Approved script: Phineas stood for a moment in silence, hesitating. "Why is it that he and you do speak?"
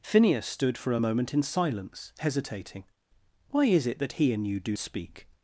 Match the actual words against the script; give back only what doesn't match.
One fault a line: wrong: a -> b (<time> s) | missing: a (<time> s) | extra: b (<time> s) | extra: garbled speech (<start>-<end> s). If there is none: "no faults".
no faults